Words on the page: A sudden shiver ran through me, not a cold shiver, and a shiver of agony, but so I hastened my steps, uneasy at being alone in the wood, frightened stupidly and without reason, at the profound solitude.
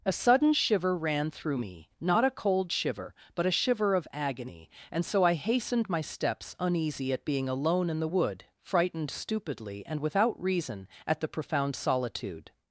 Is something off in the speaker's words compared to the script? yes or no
yes